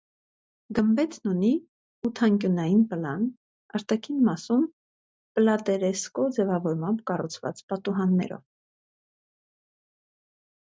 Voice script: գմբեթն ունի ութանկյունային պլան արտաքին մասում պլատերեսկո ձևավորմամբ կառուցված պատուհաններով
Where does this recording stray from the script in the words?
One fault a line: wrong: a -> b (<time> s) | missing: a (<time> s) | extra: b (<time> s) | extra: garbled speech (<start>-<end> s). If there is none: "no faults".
no faults